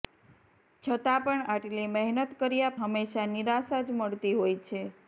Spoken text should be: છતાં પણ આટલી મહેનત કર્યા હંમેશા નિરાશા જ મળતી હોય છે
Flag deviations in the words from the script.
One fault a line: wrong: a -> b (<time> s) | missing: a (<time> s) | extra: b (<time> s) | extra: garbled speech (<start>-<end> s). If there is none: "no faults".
no faults